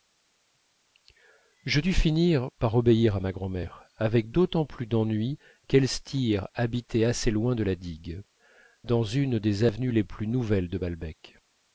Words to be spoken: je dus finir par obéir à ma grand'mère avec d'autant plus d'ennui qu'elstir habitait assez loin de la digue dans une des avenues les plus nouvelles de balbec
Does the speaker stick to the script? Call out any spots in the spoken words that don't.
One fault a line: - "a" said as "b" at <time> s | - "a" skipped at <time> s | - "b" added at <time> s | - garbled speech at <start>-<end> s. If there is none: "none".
none